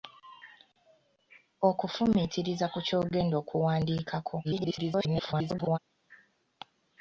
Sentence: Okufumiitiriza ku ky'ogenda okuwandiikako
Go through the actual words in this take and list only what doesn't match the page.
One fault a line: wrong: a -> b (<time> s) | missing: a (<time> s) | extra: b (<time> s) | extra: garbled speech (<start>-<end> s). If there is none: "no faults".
extra: garbled speech (4.4-5.8 s)